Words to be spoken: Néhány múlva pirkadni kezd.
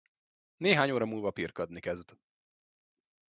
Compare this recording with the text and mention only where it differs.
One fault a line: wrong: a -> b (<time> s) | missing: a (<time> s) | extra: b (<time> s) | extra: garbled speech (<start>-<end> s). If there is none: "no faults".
extra: óra (0.9 s)